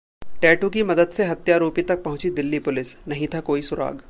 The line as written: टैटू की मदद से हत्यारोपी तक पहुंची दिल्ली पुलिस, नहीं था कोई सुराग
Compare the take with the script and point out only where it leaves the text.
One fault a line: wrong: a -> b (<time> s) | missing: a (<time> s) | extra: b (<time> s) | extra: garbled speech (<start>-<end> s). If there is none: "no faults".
no faults